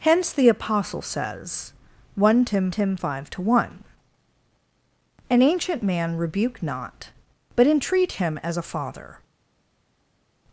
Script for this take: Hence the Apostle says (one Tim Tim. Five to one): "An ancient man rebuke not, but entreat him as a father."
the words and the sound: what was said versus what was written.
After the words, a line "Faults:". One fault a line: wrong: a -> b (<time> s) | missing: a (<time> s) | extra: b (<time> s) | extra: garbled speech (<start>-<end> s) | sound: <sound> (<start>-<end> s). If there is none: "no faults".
Hence the Apostle says (one Tim Tim. Five to one): "An ancient man rebuke not, but entreat him as a father."
Faults:
no faults